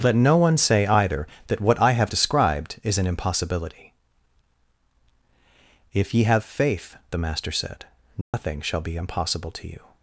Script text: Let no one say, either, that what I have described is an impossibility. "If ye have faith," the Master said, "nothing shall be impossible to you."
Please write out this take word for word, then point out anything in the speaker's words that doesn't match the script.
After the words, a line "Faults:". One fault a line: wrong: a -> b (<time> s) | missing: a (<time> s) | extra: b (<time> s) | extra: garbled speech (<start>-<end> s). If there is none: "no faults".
Let no one say, either, that what I have described is an impossibility. "If ye have faith," the Master said, "nothing shall be impossible to you."
Faults:
no faults